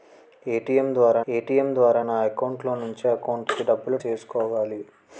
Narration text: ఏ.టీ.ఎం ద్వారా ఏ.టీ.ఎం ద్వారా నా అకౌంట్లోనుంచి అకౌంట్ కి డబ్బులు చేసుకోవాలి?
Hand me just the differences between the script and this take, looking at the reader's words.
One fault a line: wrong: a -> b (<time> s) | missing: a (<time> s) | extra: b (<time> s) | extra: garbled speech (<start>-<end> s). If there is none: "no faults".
no faults